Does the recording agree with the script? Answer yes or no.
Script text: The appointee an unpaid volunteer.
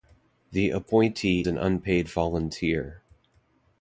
yes